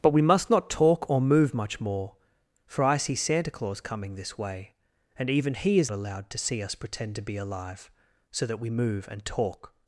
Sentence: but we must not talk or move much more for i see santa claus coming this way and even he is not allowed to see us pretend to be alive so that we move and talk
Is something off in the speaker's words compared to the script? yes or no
yes